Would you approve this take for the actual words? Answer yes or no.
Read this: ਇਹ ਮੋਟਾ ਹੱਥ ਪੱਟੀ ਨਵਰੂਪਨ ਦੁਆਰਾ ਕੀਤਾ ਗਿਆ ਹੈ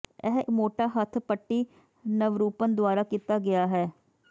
yes